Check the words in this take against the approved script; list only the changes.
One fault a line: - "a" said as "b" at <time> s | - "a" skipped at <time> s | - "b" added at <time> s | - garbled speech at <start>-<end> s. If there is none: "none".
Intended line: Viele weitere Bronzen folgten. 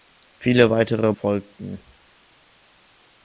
- "Bronzen" skipped at 1.1 s